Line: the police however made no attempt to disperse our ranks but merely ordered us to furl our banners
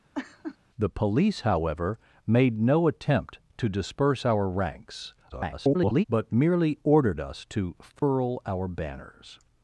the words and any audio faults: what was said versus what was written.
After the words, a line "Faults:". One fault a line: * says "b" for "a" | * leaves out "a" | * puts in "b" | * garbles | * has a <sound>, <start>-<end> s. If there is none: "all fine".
the police however made no attempt to disperse our ranks [garbled] but merely ordered us to furl our banners
Faults:
* has a laugh, 0.1-0.6 s
* garbles
* has a dropout, 8.0-8.0 s